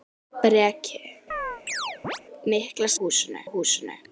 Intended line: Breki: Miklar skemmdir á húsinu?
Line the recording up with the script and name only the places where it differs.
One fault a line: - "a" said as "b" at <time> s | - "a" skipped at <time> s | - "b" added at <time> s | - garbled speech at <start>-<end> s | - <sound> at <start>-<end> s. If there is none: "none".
- chirp at 1.3-2.2 s
- "skemmdir" said as "húsinu" at 3.0 s